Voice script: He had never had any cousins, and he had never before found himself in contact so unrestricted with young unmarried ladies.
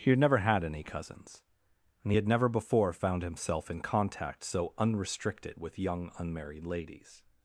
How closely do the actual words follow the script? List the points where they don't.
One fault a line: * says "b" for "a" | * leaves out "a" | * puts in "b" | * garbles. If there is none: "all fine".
all fine